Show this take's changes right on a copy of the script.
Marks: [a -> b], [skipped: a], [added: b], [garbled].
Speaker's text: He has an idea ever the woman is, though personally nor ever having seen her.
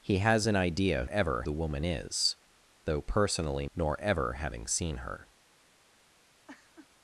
He has an idea ever the woman is, though personally nor ever having seen her.